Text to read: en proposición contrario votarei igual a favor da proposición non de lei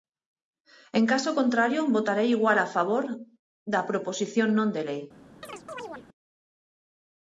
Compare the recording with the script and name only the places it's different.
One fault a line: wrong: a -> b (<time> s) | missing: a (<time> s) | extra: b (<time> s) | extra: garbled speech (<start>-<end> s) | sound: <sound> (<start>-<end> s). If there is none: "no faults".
wrong: proposición -> caso (1.1 s)
sound: chirp (5.4-6.1 s)